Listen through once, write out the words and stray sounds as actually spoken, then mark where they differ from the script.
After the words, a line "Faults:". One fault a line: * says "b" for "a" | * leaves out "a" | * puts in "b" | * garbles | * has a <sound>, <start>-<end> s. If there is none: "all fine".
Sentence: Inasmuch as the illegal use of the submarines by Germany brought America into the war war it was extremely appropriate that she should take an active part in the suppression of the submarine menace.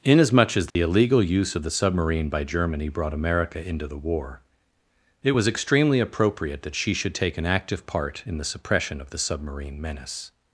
Inasmuch as the illegal use of the submarine by Germany brought America into the war it was extremely appropriate that she should take an active part in the suppression of the submarine menace.
Faults:
* has a dropout, 0.7-0.8 s
* says "submarine" for "submarines"
* leaves out "war"